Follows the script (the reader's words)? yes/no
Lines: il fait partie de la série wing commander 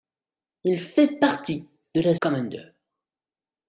no